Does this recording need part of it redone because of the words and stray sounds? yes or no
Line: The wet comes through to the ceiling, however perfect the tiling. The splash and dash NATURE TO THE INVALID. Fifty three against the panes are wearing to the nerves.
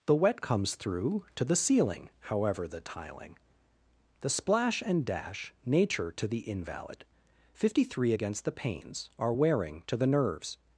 yes